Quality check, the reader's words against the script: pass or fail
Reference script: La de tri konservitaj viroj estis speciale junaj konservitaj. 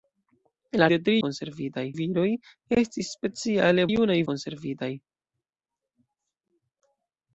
pass